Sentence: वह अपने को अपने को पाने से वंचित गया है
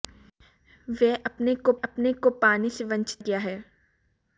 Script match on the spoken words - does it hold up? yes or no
yes